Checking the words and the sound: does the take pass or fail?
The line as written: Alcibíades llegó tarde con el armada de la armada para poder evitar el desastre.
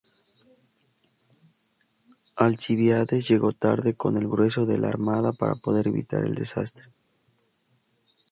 fail